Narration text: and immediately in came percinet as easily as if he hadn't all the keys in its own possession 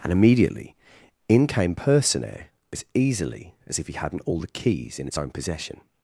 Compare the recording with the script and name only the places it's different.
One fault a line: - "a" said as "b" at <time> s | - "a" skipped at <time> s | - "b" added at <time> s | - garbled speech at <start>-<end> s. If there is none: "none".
none